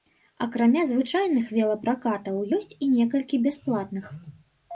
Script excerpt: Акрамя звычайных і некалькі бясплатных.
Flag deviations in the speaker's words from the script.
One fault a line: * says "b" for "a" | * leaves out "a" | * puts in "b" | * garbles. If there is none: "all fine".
* puts in "велапракатаў ёсць"